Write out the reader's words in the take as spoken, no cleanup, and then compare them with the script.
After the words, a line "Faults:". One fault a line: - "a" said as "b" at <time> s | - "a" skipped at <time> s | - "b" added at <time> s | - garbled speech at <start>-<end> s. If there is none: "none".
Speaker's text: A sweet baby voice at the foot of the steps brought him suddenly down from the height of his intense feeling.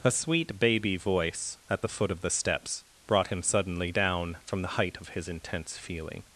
A sweet baby voice at the foot of the steps brought him suddenly down from the height of his intense feeling.
Faults:
none